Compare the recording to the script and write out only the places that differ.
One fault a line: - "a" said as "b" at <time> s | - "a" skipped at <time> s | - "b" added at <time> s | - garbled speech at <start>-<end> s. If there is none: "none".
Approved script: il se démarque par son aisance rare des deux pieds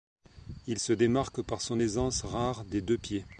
none